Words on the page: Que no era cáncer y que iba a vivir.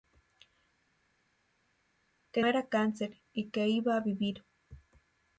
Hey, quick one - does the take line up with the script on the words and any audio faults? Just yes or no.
no